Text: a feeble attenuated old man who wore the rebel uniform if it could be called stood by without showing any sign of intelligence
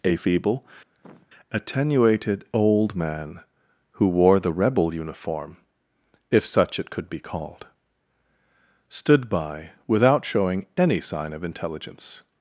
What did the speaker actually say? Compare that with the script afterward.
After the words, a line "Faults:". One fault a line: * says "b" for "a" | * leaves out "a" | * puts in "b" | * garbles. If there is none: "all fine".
a feeble attenuated old man who wore the rebel uniform if such it could be called stood by without showing any sign of intelligence
Faults:
* puts in "such"